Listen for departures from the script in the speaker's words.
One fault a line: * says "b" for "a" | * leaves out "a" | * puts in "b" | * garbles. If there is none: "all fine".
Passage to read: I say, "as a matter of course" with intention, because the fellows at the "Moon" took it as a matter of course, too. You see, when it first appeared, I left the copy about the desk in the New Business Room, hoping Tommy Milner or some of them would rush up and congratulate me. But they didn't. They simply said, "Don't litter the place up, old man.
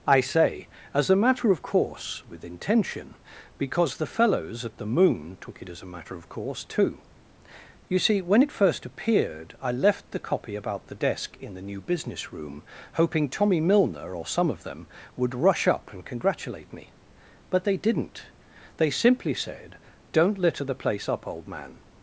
all fine